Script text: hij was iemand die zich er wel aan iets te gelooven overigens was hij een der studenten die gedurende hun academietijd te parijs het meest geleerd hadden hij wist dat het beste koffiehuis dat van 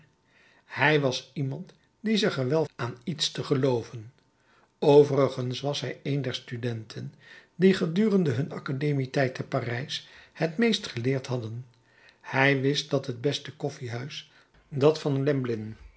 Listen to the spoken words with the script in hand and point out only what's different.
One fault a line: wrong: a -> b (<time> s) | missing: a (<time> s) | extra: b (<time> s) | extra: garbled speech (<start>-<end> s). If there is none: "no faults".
no faults